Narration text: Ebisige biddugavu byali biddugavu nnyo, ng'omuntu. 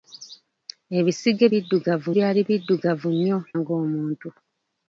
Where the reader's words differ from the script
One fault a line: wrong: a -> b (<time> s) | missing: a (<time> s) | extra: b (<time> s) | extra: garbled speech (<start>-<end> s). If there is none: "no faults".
no faults